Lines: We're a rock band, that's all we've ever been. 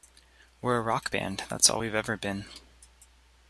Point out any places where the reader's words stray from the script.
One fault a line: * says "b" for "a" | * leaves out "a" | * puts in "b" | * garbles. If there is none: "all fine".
all fine